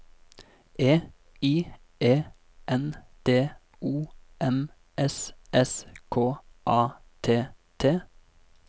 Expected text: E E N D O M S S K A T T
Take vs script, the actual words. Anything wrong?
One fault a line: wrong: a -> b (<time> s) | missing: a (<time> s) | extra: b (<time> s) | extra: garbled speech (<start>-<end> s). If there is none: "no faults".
extra: I (1.4 s)